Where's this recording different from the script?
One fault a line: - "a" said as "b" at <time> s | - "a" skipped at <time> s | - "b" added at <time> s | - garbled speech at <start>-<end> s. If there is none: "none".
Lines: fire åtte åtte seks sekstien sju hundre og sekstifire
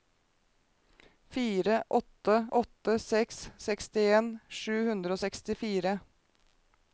none